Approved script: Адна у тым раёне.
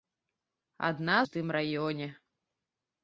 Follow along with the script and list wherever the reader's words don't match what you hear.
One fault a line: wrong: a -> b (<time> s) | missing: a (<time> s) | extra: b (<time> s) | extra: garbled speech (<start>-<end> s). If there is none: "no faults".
no faults